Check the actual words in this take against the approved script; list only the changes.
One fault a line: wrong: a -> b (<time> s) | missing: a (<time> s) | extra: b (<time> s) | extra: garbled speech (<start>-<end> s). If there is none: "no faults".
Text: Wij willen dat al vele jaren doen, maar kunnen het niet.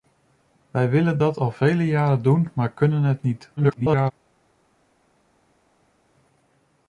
extra: garbled speech (3.6-4.1 s)